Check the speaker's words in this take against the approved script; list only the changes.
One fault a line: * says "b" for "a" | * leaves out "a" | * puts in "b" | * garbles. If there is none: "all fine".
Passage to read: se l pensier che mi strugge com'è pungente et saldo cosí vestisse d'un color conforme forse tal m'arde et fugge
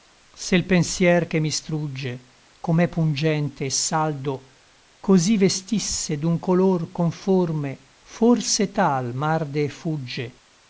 all fine